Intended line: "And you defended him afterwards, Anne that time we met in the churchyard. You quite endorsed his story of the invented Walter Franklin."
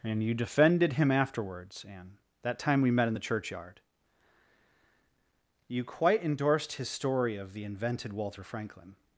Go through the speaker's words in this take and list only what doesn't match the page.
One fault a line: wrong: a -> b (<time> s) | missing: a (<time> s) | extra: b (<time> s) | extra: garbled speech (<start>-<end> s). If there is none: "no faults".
no faults